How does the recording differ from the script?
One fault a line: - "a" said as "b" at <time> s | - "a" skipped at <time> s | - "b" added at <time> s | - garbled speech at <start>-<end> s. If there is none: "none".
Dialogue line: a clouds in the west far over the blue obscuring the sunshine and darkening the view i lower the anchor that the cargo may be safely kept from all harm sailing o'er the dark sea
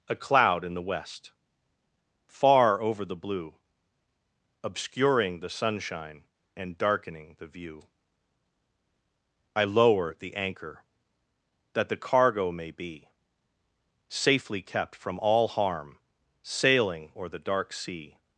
- "clouds" said as "cloud" at 0.1 s